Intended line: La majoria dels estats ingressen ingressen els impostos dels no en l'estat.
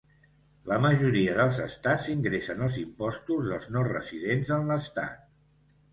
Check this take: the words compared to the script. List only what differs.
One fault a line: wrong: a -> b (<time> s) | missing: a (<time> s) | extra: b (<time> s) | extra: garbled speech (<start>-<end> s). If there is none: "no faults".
missing: ingressen (2.6 s)
extra: residents (3.9 s)